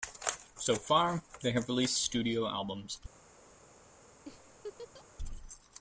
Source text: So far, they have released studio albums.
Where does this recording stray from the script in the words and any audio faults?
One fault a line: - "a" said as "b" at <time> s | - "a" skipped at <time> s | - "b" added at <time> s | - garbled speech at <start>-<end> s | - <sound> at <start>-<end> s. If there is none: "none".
- laugh at 4.3-5.1 s